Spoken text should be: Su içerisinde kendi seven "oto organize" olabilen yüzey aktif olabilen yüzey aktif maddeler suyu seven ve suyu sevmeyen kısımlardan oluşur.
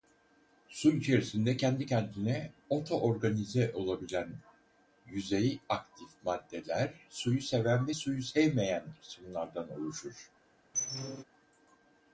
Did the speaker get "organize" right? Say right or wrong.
right